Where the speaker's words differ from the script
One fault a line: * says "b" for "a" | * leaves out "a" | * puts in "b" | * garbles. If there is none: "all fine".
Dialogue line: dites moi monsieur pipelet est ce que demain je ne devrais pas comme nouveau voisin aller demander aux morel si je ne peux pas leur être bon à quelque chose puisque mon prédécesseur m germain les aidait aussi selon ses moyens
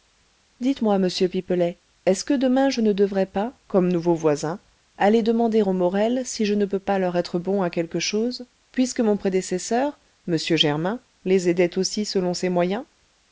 all fine